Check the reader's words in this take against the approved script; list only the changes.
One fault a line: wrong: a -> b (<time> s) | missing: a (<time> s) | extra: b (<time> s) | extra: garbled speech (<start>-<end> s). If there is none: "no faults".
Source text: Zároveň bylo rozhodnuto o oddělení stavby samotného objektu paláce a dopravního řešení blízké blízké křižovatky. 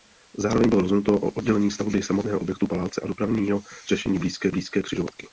no faults